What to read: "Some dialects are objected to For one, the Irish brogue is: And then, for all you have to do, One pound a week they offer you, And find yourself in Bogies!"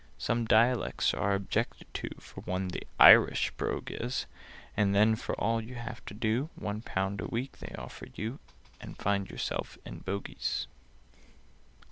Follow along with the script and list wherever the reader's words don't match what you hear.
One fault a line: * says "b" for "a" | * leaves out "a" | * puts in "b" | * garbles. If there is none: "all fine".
all fine